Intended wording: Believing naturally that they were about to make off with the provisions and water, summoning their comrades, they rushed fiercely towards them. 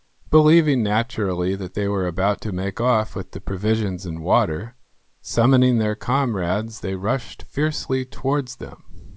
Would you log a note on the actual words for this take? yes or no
no